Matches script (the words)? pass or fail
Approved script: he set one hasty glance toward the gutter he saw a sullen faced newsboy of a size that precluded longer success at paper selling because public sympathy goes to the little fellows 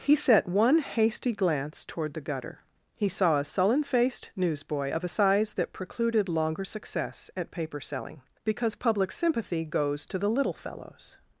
pass